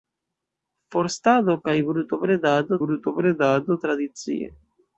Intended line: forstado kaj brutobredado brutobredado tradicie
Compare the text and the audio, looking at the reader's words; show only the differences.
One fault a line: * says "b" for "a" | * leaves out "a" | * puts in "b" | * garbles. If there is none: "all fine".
all fine